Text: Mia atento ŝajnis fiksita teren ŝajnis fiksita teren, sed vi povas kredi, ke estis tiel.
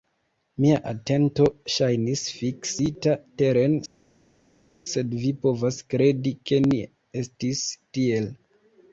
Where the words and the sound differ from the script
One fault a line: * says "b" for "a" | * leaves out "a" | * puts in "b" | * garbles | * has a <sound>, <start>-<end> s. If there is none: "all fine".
* leaves out "ŝajnis fiksita teren"
* puts in "ne"